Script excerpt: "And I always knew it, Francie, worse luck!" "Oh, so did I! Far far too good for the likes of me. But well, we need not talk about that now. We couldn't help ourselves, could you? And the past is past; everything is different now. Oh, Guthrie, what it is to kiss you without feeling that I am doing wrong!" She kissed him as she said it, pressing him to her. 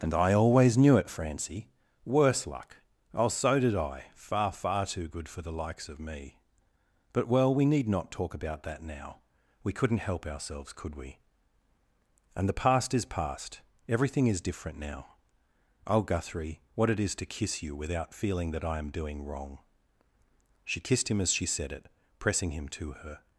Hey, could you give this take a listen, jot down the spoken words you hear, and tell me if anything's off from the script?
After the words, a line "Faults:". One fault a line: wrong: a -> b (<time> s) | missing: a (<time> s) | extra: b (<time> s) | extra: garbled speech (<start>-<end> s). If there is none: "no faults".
"And I always knew it, Francie, worse luck!" "Oh, so did I! Far far too good for the likes of me. But well, we need not talk about that now. We couldn't help ourselves, could we? And the past is past; everything is different now. Oh, Guthrie, what it is to kiss you without feeling that I am doing wrong!" She kissed him as she said it, pressing him to her.
Faults:
wrong: you -> we (10.9 s)